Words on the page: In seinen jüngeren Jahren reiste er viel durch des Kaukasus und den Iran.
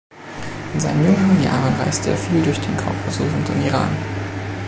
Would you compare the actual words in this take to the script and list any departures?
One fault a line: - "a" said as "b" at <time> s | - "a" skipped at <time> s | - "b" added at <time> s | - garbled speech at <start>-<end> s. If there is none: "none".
- "des" said as "den" at 2.6 s